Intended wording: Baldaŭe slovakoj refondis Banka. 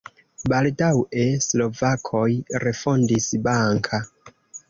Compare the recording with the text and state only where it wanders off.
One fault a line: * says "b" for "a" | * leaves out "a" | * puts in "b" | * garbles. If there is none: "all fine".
all fine